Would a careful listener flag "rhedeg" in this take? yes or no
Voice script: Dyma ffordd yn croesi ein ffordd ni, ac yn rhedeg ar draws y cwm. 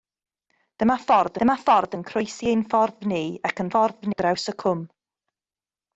yes